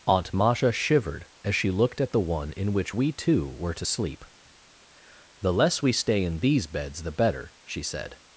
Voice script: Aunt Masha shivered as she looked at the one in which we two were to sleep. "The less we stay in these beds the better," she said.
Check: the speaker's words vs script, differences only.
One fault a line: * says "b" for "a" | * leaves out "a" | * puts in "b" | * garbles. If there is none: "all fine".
all fine